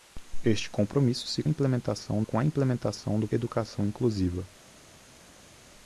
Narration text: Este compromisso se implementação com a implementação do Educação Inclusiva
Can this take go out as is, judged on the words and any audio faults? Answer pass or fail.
pass